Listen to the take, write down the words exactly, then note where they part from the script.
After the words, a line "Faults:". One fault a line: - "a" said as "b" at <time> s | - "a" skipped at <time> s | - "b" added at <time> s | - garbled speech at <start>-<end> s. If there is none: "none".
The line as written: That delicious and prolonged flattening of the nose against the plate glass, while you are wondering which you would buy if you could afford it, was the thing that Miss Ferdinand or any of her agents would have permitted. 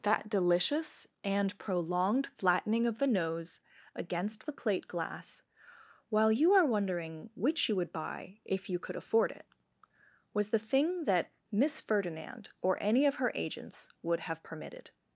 That delicious and prolonged flattening of the nose against the plate glass, while you are wondering which you would buy if you could afford it, was the thing that Miss Ferdinand or any of her agents would have permitted.
Faults:
none